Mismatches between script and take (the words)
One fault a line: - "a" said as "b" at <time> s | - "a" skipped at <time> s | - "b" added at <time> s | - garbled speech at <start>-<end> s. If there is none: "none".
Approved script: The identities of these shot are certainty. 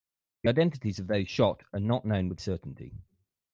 - "these" said as "those" at 1.1 s
- "not known with" added at 1.8 s